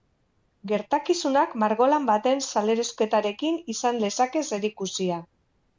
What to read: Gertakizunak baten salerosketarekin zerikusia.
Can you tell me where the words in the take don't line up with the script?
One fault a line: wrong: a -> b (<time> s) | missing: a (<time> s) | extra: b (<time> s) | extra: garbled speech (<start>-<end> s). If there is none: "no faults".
extra: margolan (1.6 s)
extra: izan lezake (3.8 s)